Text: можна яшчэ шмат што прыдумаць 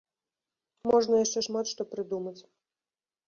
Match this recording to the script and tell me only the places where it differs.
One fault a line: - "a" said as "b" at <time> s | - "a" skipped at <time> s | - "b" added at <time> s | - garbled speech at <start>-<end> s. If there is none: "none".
none